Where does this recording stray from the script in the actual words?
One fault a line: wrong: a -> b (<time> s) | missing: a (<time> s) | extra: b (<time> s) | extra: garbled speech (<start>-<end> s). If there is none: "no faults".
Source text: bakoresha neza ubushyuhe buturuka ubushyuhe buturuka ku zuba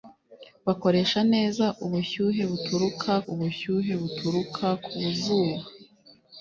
no faults